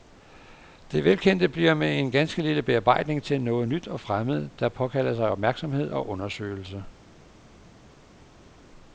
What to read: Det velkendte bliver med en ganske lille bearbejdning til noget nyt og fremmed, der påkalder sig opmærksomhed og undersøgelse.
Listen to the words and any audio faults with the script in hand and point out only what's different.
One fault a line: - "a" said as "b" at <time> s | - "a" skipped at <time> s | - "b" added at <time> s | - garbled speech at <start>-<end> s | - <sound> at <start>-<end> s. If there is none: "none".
none